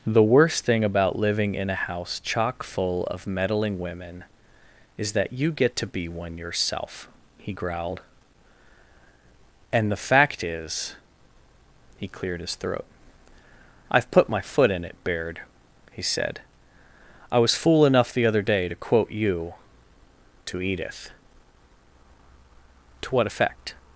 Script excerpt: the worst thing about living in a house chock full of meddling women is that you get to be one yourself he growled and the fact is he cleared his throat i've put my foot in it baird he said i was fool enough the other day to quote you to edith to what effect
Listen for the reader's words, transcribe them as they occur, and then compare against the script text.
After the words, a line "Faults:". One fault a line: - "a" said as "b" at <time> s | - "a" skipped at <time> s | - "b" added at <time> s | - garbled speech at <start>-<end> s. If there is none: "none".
the worst thing about living in a house chock full of meddling women is that you get to be one yourself he growled and the fact is he cleared his throat i've put my foot in it baird he said i was fool enough the other day to quote you to edith to what effect
Faults:
none